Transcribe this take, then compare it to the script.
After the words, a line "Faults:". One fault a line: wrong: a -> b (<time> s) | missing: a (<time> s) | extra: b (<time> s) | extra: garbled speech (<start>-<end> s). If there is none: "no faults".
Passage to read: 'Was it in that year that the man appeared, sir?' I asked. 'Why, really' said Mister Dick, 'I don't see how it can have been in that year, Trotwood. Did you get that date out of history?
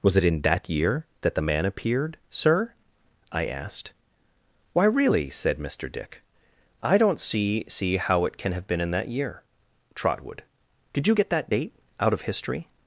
'Was it in that year that the man appeared, sir?' I asked. 'Why, really' said Mister Dick, 'I don't see see how it can have been in that year, Trotwood. Did you get that date out of history?
Faults:
extra: see (7.7 s)